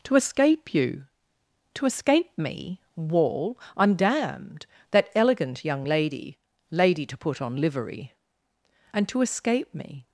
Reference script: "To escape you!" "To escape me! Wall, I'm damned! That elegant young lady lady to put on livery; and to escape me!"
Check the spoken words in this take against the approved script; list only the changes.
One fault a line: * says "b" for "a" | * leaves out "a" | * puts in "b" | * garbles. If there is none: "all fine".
all fine